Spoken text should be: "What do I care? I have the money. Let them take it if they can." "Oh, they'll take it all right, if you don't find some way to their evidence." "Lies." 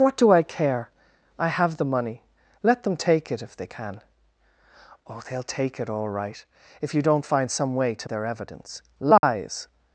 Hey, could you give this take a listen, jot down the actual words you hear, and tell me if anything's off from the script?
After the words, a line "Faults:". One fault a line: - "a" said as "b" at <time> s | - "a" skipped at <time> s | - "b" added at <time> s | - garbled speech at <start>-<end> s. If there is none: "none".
"What do I care? I have the money. Let them take it if they can." "Oh, they'll take it all right, if you don't find some way to their evidence." "Lies."
Faults:
none